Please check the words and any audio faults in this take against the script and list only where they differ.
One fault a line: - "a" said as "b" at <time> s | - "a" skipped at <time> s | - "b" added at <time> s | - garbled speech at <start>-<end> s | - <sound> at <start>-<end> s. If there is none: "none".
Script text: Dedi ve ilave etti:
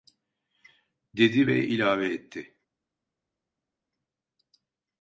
none